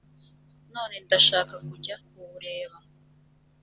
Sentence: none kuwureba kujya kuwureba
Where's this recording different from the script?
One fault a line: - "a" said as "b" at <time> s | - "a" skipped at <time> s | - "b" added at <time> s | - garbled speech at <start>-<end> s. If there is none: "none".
- "kuwureba" said as "ndashaka" at 1.1 s